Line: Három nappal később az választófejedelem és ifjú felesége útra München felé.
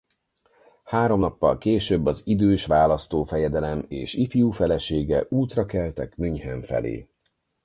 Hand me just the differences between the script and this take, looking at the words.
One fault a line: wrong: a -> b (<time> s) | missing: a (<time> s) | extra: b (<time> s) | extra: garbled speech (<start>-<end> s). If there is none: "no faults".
extra: idős (2.2 s)
extra: keltek (5.7 s)